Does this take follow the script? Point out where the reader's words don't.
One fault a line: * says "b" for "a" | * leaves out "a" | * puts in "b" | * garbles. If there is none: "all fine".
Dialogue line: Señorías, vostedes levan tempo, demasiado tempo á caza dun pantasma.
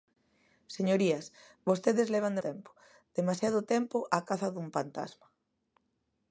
all fine